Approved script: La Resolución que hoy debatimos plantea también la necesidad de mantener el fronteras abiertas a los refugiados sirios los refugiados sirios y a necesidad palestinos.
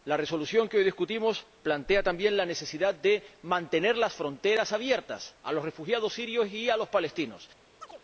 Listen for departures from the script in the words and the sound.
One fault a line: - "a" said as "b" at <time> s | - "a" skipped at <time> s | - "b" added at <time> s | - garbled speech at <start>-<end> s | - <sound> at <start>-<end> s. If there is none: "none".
- "el" said as "las" at 4.0 s
- "los refugiados sirios" skipped at 6.5 s
- "necesidad" said as "los" at 6.8 s
- chirp at 7.8-8.0 s